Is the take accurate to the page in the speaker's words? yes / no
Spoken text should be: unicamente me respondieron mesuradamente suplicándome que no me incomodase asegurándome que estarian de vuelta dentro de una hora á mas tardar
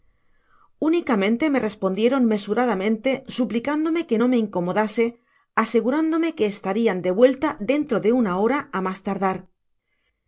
yes